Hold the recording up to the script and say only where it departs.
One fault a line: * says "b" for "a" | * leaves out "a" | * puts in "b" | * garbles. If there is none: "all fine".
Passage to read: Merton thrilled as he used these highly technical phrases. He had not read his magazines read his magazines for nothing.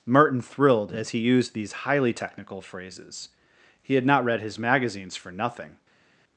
* leaves out "read his magazines"